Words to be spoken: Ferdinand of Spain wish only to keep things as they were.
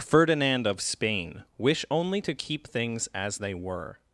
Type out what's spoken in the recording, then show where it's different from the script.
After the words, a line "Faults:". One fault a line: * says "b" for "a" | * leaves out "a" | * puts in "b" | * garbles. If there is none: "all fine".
Ferdinand of Spain wish only to keep things as they were.
Faults:
all fine